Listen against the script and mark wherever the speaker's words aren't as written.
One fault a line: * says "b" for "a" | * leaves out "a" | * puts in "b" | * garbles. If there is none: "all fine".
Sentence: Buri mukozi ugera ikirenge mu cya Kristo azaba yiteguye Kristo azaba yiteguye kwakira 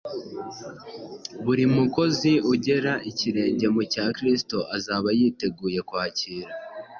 * leaves out "Kristo azaba yiteguye"